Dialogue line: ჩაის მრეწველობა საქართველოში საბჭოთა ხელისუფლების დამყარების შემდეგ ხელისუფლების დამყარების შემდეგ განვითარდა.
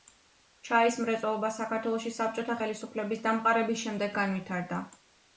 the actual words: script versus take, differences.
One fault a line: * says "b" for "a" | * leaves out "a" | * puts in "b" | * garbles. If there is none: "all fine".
* leaves out "ხელისუფლების დამყარების შემდეგ"